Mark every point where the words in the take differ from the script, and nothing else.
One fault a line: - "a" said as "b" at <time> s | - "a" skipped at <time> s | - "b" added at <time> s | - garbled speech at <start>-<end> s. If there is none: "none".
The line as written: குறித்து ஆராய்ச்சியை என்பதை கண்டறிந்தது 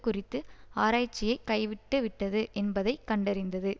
- "கைவிட்டுவிட்டது" added at 1.5 s